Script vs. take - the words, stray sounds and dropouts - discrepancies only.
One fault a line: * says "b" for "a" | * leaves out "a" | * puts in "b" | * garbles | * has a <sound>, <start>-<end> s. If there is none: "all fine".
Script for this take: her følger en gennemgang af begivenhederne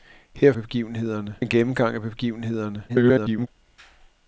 * says "begivenhederne" for "følger"
* garbles